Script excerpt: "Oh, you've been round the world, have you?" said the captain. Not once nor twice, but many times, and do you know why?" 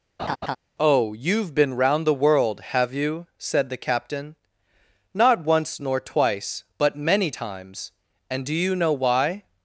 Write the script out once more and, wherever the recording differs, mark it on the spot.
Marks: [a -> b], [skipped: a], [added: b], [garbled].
"Oh, you've been round the world, have you?" said the captain. Not once nor twice, but many times, and do you know why?"